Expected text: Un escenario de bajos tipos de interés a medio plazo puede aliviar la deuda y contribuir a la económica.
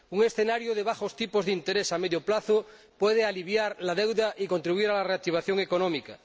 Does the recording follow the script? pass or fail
fail